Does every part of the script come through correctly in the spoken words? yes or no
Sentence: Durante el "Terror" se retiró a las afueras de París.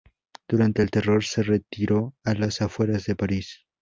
yes